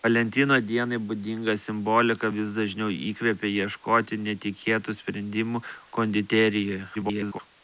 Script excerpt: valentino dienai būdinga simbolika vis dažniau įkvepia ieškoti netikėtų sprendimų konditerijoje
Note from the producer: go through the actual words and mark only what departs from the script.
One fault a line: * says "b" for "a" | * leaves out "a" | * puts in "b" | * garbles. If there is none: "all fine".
* garbles